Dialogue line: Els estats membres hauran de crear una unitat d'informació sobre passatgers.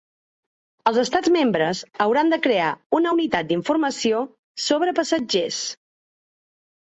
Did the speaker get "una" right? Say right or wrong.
right